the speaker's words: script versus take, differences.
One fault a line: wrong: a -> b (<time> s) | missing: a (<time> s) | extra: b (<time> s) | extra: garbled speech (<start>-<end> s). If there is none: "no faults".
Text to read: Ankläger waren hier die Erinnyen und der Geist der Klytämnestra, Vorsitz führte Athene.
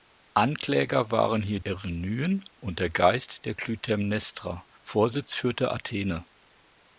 missing: die (1.6 s)